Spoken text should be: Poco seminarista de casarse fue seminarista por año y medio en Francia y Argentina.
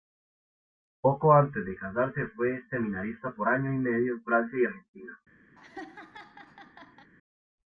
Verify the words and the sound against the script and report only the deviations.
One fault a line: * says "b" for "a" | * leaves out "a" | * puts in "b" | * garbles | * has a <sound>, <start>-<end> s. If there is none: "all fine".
* says "antes" for "seminarista"
* has a laugh, 5.6-7.1 s